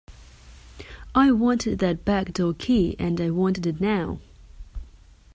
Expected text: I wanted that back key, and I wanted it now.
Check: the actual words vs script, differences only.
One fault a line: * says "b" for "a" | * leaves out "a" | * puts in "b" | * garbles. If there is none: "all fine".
* puts in "door"